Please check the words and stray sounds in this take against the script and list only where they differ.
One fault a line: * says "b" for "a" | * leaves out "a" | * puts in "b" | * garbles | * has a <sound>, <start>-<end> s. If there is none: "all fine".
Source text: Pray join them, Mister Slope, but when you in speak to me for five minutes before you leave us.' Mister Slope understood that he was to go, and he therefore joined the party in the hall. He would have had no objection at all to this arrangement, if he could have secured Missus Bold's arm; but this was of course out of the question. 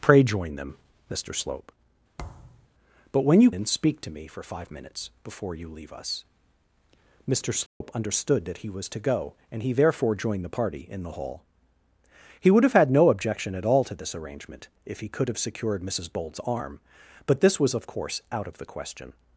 * has a thud, 2.2-2.7 s
* has a dropout, 7.7-7.8 s